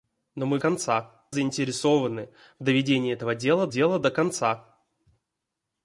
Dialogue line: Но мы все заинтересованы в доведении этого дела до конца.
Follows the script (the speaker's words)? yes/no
no